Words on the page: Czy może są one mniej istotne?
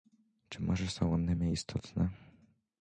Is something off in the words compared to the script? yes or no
no